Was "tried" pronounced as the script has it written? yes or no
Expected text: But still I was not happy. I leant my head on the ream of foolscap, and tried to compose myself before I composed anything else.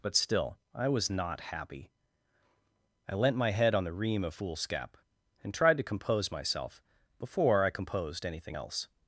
yes